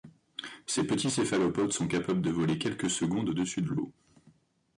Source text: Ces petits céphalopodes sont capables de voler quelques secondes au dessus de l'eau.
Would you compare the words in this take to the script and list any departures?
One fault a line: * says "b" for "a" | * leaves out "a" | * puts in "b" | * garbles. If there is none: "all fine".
all fine